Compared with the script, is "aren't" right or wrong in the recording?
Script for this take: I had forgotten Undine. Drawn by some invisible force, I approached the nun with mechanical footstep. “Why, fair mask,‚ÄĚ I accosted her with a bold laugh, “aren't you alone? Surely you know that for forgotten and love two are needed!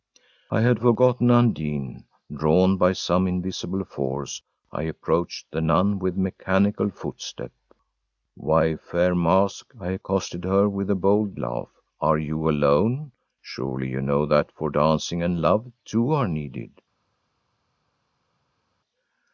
wrong